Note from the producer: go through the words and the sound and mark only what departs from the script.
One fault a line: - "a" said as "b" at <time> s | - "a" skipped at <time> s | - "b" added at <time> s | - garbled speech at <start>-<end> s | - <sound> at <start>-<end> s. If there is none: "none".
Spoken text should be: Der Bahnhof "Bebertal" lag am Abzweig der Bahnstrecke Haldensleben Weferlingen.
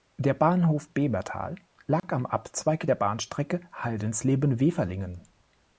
- dropout at 2.0-2.0 s